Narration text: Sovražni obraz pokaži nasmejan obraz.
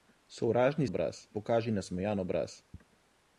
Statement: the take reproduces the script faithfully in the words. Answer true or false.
true